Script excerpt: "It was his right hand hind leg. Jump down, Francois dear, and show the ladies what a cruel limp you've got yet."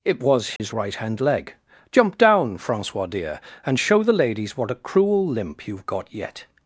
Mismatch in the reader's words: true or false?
true